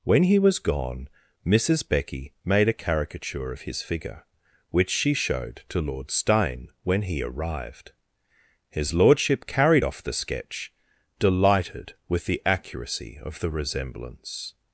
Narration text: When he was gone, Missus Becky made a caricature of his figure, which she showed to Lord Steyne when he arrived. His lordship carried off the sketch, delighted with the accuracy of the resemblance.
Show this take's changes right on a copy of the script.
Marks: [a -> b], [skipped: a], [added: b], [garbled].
When he was gone, Missus Becky made a caricature of his figure, which she showed to Lord Steyne when he arrived. His lordship carried off the sketch, delighted with the accuracy of the resemblance.